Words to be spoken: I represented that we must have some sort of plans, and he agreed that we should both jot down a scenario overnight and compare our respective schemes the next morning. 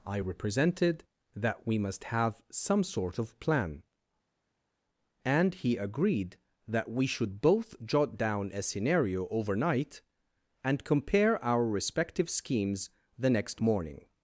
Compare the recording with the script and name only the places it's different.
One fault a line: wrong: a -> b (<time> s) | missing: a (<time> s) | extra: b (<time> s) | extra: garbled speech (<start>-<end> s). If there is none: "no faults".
wrong: plans -> plan (3.4 s)